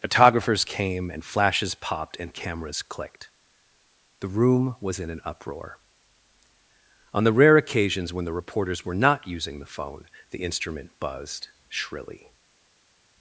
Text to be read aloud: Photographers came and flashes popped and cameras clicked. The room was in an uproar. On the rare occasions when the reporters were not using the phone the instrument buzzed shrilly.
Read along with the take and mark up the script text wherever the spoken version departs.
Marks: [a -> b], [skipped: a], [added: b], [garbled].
Photographers came and flashes popped and cameras clicked. The room was in an uproar. On the rare occasions when the reporters were not using the phone the instrument buzzed shrilly.